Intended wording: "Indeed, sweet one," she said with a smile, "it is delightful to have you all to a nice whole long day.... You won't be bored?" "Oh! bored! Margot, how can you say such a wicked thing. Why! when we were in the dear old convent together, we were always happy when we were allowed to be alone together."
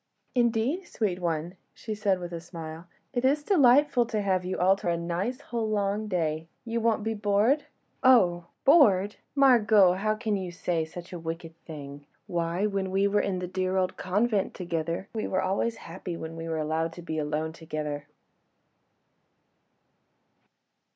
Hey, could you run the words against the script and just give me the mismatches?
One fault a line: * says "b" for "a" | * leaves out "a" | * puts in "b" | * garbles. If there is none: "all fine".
all fine